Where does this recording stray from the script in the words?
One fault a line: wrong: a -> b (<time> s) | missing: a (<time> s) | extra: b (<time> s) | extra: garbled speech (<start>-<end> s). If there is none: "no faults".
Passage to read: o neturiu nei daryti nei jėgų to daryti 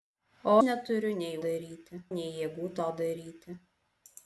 no faults